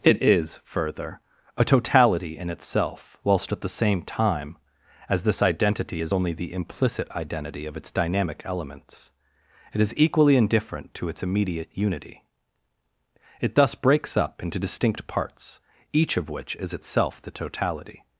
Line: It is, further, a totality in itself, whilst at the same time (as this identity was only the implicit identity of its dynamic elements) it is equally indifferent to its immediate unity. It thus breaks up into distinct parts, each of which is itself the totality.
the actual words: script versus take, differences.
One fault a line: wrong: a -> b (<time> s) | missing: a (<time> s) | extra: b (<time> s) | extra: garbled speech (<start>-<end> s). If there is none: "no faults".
wrong: was -> is (6.0 s)